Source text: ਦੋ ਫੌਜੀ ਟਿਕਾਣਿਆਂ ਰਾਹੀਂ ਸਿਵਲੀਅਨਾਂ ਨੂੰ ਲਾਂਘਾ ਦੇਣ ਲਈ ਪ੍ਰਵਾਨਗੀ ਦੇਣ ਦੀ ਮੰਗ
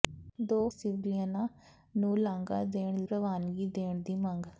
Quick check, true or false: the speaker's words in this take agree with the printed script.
false